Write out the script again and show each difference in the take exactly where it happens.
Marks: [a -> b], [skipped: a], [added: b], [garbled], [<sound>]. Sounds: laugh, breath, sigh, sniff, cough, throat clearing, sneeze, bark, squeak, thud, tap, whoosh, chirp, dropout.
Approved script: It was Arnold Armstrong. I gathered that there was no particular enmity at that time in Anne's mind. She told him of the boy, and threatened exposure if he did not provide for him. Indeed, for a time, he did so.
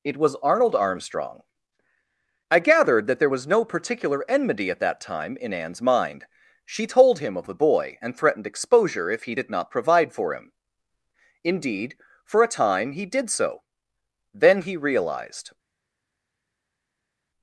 It was Arnold Armstrong. I gathered that there was no particular enmity at that time in Anne's mind. She told him of the boy, and threatened exposure if he did not provide for him. Indeed, for a time, he did so. [added: Then he realized]